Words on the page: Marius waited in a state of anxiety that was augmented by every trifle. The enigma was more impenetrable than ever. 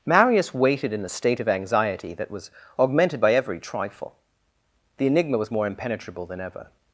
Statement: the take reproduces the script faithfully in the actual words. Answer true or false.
true